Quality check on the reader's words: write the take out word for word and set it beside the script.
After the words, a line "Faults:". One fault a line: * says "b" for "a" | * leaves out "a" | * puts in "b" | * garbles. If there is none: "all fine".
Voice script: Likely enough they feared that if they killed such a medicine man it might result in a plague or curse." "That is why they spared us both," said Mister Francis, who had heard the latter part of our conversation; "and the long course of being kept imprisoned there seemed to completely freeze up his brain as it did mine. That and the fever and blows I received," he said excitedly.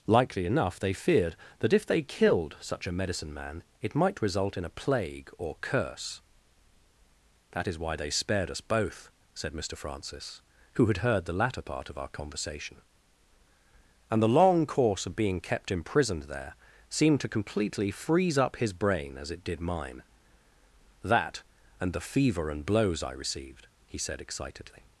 Likely enough they feared that if they killed such a medicine man it might result in a plague or curse." "That is why they spared us both," said Mister Francis, who had heard the latter part of our conversation; "and the long course of being kept imprisoned there seemed to completely freeze up his brain as it did mine. That and the fever and blows I received," he said excitedly.
Faults:
all fine